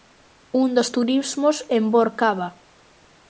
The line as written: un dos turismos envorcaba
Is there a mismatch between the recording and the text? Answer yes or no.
no